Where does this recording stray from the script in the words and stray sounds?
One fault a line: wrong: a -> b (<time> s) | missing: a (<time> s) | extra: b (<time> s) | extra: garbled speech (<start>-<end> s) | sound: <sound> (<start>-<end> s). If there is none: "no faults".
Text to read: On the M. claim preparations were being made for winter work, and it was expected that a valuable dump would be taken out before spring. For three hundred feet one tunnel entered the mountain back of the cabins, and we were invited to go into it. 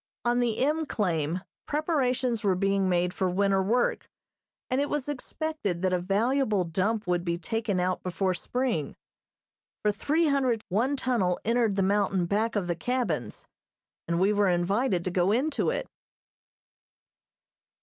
missing: feet (10.6 s)